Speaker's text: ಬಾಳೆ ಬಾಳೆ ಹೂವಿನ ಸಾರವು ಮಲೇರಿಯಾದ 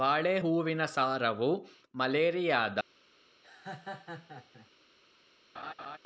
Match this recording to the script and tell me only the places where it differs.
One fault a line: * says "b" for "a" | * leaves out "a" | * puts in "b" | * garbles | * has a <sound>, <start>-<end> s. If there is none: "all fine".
* leaves out "ಬಾಳೆ"
* has a laugh, 3.4-4.7 s
* has a laugh, 5.5-6.0 s